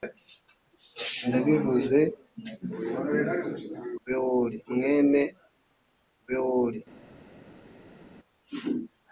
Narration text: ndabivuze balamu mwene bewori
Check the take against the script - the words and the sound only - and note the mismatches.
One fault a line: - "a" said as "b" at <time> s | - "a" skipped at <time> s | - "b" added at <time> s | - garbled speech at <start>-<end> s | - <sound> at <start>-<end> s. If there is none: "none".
- "balamu" said as "bewori" at 4.0 s